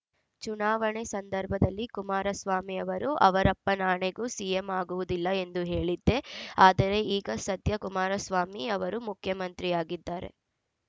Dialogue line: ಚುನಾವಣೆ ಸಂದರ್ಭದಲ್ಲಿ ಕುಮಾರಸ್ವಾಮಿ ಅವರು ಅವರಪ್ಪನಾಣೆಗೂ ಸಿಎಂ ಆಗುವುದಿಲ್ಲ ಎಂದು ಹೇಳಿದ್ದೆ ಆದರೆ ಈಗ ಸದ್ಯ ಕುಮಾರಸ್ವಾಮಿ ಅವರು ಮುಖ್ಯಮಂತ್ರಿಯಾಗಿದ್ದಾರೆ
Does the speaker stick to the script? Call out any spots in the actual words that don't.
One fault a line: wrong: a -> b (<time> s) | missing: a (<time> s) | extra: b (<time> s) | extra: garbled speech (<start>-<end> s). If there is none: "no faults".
no faults